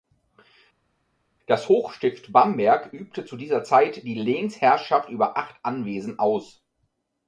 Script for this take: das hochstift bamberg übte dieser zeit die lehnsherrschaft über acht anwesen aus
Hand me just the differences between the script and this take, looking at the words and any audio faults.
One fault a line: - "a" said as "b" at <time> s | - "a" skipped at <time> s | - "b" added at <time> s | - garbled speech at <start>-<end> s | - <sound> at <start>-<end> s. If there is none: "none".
- "zu" added at 3.2 s